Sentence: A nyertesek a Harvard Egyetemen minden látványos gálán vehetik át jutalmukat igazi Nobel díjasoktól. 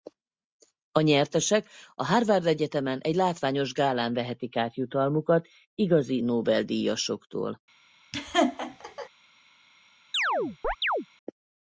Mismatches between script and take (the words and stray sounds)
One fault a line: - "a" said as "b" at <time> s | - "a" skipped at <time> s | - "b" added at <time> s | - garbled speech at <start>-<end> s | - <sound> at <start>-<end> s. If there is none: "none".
- "minden" said as "egy" at 3.0 s
- laugh at 8.1-9.1 s
- chirp at 10.1-11.1 s